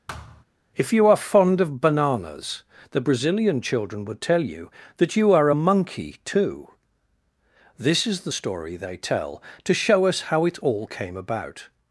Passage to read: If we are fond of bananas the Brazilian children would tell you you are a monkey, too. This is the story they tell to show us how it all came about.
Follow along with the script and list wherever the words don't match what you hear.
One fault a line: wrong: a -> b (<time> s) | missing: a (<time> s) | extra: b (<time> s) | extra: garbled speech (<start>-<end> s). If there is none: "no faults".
wrong: we -> you (0.9 s)
extra: that (5.0 s)